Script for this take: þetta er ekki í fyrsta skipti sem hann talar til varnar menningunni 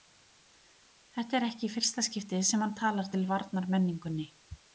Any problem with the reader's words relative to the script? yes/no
no